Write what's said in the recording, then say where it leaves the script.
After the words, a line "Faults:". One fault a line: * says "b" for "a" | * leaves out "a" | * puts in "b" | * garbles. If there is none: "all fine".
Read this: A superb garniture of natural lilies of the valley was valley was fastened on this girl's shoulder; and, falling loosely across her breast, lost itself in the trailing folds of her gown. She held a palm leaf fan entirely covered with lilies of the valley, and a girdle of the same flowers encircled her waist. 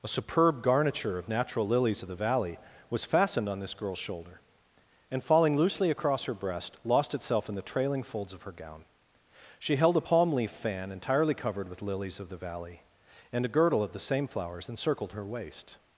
A superb garniture of natural lilies of the valley was fastened on this girl's shoulder; and, falling loosely across her breast, lost itself in the trailing folds of her gown. She held a palm leaf fan entirely covered with lilies of the valley, and a girdle of the same flowers encircled her waist.
Faults:
* leaves out "valley was"